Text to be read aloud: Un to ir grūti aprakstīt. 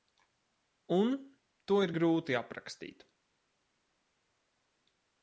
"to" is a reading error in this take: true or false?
false